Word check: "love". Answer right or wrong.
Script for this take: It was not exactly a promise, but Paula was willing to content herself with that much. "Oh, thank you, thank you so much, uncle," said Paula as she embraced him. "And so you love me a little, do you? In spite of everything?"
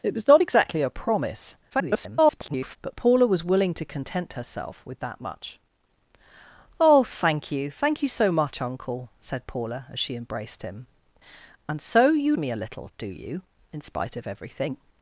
wrong